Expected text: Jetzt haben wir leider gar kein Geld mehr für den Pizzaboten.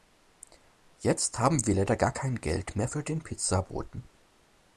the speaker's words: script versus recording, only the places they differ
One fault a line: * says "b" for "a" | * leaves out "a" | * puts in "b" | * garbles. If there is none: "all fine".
all fine